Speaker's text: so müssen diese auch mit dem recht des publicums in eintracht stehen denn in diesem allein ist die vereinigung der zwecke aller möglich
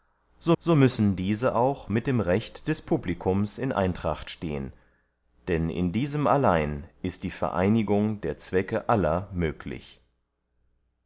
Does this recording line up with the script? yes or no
no